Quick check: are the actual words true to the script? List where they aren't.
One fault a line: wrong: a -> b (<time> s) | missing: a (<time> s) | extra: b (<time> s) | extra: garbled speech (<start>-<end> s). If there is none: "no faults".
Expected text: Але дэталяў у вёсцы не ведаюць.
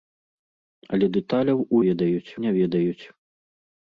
wrong: вёсцы -> ведаюць (1.9 s)